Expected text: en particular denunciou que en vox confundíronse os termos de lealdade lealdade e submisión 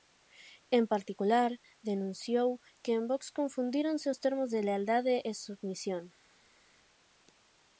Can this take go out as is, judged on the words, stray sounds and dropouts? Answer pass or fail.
fail